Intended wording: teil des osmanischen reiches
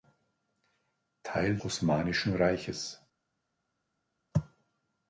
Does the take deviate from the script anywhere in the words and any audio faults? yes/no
yes